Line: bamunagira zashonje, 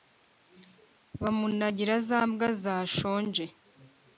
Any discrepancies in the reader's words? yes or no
yes